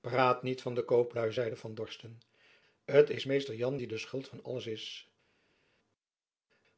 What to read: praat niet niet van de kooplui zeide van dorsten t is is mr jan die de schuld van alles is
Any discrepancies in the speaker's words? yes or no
yes